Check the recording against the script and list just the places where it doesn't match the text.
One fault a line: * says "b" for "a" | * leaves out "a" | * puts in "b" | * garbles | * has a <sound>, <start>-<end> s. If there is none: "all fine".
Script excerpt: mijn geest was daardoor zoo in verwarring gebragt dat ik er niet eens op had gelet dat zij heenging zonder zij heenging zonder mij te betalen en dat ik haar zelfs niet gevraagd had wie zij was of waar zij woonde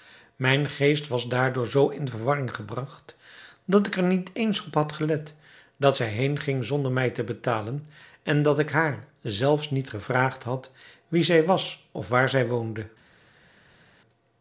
* leaves out "zij heenging zonder"